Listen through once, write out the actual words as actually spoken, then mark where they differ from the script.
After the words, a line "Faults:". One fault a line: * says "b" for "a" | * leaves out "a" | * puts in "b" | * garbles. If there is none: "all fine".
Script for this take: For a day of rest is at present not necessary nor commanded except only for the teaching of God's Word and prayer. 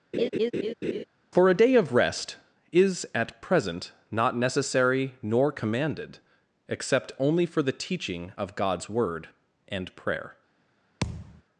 For a day of rest is at present not necessary nor commanded except only for the teaching of God's Word and prayer.
Faults:
all fine